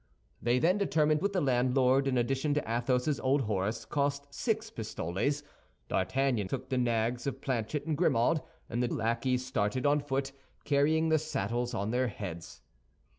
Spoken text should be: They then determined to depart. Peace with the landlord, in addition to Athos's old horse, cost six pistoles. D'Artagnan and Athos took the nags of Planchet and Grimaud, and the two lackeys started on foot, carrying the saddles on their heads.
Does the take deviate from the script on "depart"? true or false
true